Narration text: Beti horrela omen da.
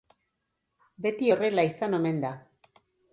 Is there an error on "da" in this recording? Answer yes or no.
no